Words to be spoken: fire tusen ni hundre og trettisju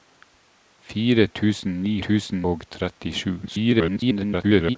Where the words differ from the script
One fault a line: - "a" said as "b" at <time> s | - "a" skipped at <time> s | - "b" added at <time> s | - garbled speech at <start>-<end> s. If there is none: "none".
- "hundre" said as "tusen" at 2.1 s
- garbled speech at 3.4-4.8 s